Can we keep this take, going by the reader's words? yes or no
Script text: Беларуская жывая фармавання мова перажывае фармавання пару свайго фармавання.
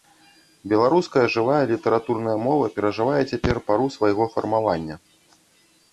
no